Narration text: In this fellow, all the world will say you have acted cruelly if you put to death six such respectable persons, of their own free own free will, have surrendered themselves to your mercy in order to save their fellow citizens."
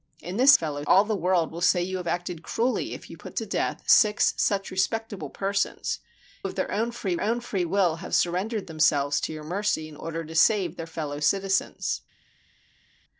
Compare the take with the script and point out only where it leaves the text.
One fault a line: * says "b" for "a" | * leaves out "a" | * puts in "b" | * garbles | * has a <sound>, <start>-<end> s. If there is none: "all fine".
all fine